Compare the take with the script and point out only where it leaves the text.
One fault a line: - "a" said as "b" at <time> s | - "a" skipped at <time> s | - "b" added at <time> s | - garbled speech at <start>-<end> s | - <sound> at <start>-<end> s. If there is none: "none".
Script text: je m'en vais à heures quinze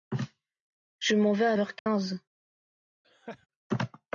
- dropout at 1.8-1.9 s
- laugh at 3.0-3.5 s